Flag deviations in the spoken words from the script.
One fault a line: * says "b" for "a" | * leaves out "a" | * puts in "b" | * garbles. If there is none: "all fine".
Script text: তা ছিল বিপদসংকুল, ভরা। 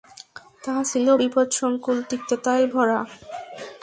* puts in "তিক্ততায়"